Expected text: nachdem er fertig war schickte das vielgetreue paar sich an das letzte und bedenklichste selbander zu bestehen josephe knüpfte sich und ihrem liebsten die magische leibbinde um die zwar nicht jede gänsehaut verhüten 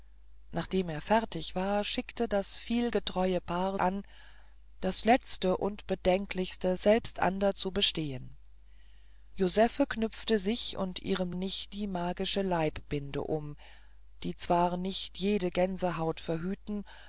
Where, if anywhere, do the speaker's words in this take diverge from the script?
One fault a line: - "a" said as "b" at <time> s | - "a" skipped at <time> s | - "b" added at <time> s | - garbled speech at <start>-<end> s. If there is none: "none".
- "sich" skipped at 3.8 s
- "liebsten" said as "nicht" at 11.3 s